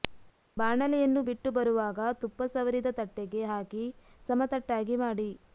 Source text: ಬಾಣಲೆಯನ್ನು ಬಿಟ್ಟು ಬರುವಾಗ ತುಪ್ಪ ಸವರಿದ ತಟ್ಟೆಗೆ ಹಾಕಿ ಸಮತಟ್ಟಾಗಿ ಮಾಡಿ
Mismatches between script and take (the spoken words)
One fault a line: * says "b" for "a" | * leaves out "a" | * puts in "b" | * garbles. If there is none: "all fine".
all fine